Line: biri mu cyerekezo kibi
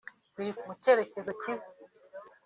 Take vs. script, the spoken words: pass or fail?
pass